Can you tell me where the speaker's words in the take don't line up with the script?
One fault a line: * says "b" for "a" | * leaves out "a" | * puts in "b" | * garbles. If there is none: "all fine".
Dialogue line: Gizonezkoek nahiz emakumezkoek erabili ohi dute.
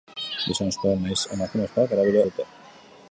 * leaves out "ohi"